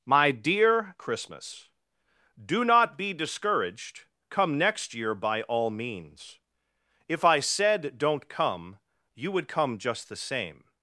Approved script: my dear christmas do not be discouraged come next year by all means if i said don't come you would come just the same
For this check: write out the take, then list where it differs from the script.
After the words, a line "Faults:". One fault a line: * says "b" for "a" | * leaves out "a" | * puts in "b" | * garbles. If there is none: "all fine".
my dear christmas do not be discouraged come next year by all means if i said don't come you would come just the same
Faults:
all fine